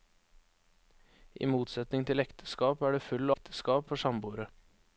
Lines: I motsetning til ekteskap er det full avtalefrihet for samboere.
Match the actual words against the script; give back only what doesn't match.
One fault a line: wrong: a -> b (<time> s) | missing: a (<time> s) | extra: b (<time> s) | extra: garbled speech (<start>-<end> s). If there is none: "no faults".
wrong: avtalefrihet -> ekteskap (3.3 s)